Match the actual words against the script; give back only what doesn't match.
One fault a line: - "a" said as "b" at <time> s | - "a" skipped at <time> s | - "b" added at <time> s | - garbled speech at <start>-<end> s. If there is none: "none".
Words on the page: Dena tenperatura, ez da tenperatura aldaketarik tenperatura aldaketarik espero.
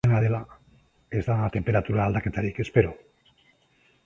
- "tenperatura" said as "dela" at 0.2 s
- "tenperatura aldaketarik" skipped at 2.6 s